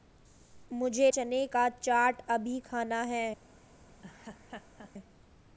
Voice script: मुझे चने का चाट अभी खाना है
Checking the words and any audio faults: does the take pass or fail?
fail